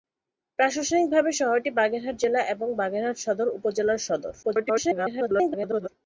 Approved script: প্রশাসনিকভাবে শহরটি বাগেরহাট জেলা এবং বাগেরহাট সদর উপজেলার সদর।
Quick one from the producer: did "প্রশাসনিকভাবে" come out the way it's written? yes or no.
yes